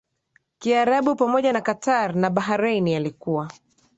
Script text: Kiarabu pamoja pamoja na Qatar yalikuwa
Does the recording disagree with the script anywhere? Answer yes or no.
yes